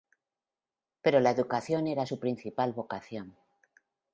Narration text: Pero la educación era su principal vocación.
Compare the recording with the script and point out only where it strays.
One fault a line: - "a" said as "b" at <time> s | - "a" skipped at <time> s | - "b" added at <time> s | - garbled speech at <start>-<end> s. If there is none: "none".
none